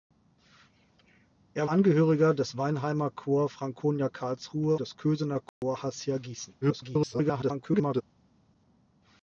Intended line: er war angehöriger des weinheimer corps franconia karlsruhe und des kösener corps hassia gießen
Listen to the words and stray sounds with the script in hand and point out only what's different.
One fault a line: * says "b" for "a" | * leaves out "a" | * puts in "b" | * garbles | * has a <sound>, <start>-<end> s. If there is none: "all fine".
* leaves out "war"
* leaves out "und"
* has a dropout, 5.5-5.6 s
* garbles